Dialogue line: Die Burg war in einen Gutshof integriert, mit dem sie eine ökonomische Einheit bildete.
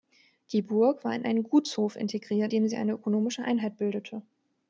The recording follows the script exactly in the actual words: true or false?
false